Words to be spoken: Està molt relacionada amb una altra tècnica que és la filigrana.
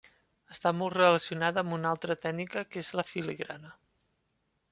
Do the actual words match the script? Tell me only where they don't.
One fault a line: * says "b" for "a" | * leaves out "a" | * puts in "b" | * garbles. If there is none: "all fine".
all fine